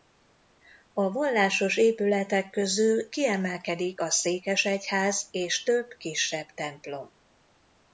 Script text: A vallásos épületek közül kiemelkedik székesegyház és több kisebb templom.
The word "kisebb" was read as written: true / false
true